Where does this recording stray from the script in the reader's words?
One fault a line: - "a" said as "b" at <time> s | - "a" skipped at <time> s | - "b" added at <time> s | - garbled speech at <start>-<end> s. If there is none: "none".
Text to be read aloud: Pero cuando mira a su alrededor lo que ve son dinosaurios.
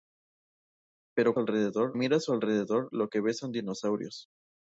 - "cuando" said as "alrededor" at 1.4 s